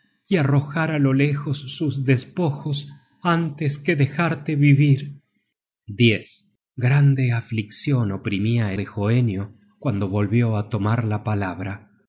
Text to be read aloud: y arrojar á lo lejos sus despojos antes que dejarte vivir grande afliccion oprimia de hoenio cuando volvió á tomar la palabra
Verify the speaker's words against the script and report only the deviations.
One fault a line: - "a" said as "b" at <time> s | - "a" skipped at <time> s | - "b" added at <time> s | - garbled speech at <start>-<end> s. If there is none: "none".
none